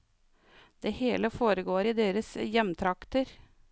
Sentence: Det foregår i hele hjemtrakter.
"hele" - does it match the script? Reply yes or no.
no